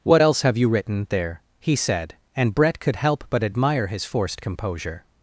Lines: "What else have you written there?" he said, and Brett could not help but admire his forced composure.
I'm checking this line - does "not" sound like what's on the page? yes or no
no